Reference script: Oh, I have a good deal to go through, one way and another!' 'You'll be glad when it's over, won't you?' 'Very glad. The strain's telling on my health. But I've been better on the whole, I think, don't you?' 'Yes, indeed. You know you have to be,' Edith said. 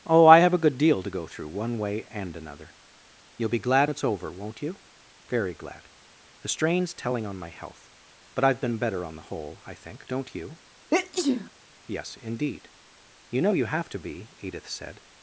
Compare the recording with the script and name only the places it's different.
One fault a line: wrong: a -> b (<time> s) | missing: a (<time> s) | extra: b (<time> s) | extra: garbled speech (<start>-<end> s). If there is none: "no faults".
missing: when (3.9 s)